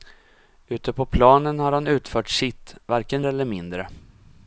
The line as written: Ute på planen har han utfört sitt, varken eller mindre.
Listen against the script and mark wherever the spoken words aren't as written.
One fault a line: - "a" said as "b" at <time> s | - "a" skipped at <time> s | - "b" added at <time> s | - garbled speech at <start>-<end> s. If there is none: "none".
none